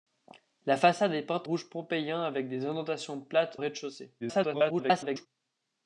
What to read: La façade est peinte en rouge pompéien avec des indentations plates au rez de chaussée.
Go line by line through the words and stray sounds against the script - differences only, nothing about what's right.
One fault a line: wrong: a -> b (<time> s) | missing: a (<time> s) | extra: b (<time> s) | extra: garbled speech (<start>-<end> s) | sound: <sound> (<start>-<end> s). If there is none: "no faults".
missing: en (1.5 s)
missing: au (3.6 s)
extra: garbled speech (4.2-5.3 s)